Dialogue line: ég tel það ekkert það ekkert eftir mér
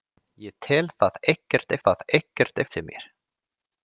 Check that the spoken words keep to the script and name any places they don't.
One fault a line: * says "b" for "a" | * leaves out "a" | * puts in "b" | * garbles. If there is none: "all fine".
all fine